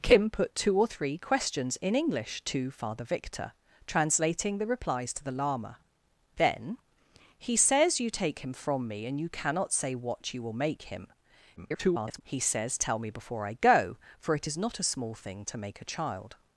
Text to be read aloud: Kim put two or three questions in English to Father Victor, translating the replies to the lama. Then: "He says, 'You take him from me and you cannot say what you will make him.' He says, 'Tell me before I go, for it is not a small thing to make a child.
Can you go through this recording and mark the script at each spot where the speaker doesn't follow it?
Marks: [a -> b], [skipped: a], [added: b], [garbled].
Kim put two or three questions in English to Father Victor, translating the replies to the lama. Then: "He says, 'You take him from me and you cannot say what you will make him.' [garbled] He says, 'Tell me before I go, for it is not a small thing to make a child.